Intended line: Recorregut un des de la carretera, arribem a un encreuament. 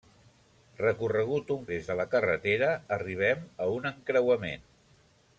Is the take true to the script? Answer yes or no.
yes